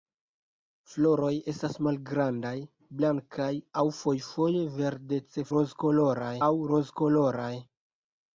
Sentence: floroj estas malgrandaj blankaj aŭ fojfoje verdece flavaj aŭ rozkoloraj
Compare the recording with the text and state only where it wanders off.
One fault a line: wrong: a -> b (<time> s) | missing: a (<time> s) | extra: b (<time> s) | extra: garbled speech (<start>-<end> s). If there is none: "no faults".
wrong: flavaj -> rozkoloraj (5.6 s)